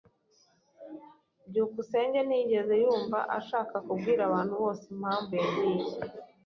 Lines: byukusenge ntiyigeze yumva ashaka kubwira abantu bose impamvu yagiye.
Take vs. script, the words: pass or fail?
pass